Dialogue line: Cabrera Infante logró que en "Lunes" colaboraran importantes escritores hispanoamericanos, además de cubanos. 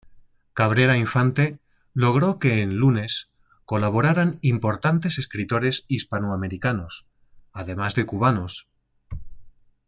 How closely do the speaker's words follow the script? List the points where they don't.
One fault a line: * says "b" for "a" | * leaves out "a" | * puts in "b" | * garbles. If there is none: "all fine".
all fine